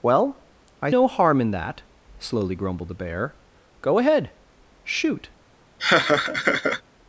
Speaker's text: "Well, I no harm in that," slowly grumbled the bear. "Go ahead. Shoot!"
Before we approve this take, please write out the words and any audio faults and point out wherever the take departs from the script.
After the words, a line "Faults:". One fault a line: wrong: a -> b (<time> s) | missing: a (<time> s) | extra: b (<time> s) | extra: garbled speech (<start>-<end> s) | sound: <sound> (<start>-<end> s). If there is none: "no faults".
"Well, I no harm in that," slowly grumbled the bear. "Go ahead. Shoot!"
Faults:
sound: laugh (5.8-6.8 s)